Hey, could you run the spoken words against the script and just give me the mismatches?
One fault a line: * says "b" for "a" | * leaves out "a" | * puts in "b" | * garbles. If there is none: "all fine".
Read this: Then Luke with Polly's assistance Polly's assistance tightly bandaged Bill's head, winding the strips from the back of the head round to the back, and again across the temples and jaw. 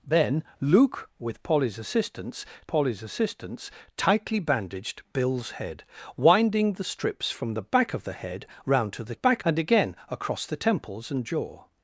all fine